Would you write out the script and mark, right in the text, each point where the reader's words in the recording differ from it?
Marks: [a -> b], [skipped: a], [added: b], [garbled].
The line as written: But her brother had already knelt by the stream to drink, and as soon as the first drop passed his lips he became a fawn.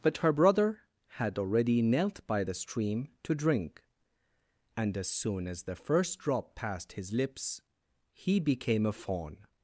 But her brother had already knelt by the stream to drink, and as soon as the first drop passed his lips he became a fawn.